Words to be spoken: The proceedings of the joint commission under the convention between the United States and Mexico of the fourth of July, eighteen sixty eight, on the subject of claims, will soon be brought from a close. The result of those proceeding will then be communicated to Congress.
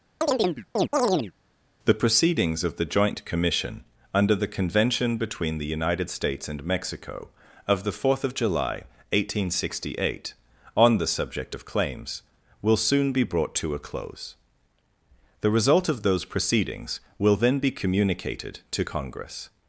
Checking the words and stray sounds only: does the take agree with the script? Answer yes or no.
no